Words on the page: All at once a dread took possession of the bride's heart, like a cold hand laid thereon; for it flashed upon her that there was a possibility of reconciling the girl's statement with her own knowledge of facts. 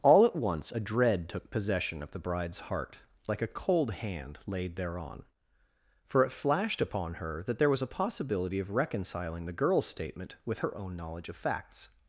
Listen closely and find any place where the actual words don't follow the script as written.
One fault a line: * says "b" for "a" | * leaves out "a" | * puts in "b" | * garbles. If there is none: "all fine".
all fine